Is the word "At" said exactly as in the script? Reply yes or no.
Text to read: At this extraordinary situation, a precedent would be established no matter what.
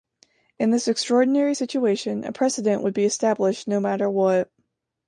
no